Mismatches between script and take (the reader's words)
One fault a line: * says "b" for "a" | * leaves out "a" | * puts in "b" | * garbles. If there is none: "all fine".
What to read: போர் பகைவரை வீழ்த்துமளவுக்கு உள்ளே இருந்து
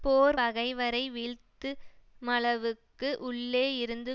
all fine